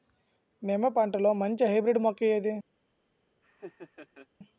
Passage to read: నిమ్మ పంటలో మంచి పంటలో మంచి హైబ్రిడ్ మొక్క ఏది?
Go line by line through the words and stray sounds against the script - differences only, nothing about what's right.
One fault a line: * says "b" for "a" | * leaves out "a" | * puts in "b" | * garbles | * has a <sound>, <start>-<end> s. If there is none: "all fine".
* leaves out "పంటలో మంచి"
* has a laugh, 3.4-4.3 s